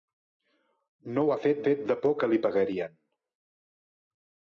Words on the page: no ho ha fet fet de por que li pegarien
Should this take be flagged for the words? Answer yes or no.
no